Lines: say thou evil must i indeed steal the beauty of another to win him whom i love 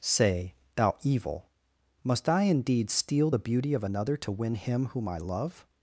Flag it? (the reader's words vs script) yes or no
no